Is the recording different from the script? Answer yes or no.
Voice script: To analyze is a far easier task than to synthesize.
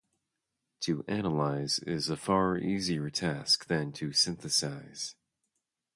no